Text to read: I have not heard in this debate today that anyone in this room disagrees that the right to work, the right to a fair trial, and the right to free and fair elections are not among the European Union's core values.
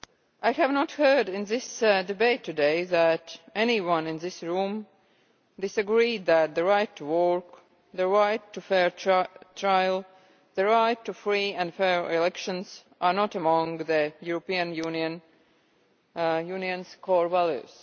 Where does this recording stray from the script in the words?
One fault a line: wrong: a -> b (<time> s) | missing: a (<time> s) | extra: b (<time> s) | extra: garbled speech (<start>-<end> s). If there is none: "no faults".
no faults